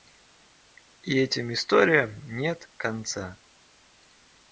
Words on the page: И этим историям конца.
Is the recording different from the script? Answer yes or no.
yes